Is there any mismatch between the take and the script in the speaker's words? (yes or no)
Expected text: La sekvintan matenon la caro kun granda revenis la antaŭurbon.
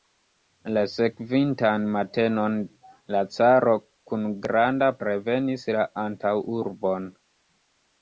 no